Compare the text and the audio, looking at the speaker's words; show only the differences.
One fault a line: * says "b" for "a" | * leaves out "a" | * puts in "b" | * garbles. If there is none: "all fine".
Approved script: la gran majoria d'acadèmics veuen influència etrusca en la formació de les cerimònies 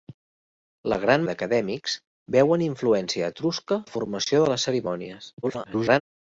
* leaves out "majoria"
* leaves out "en"
* garbles